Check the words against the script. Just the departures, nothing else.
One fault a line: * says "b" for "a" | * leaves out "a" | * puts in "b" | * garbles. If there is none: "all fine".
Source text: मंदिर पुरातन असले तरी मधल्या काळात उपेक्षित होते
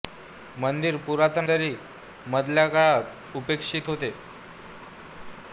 * leaves out "असले"